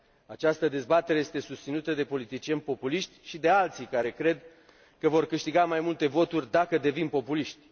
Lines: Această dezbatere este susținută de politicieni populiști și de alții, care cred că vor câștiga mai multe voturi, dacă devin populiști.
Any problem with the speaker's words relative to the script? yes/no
no